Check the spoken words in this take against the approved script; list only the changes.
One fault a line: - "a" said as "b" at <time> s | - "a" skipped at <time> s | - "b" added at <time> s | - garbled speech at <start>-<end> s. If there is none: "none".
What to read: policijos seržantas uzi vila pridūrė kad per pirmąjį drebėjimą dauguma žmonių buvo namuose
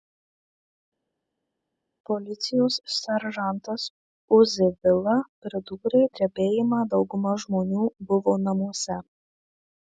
- "kad per pirmąjį" skipped at 6.0 s